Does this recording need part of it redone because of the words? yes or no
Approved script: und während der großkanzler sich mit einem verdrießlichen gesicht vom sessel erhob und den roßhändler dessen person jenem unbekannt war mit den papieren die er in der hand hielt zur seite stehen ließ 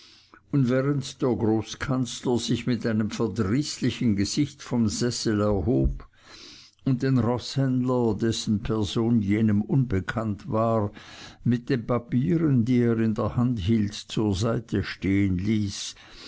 no